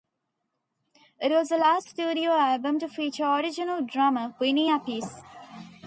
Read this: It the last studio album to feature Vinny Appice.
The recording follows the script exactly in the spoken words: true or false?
false